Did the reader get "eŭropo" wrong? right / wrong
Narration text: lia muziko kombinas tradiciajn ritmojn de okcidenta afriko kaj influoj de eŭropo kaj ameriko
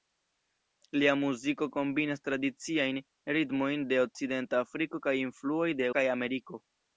wrong